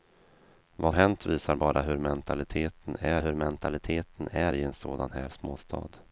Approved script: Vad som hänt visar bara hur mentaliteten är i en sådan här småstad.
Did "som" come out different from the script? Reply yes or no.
yes